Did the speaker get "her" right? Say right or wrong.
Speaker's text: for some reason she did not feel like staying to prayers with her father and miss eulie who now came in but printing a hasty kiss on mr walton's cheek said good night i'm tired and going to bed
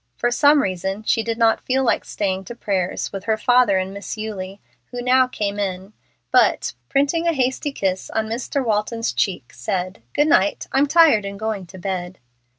right